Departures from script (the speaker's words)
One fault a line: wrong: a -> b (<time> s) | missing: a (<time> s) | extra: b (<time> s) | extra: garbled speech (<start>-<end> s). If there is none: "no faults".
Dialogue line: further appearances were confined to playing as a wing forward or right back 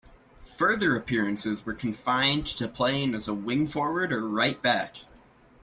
no faults